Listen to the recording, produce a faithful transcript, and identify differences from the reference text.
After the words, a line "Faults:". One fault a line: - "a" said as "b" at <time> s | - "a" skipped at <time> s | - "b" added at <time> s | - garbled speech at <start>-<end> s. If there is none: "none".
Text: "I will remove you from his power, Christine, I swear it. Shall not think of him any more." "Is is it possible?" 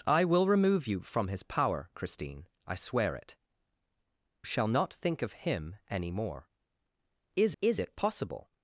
"I will remove you from his power, Christine, I swear it. Shall not think of him any more." "Is is it possible?"
Faults:
none